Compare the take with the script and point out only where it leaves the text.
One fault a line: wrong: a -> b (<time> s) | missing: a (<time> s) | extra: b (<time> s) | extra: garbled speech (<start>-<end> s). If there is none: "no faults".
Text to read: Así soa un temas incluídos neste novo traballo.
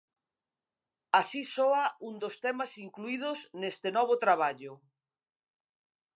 extra: dos (2.2 s)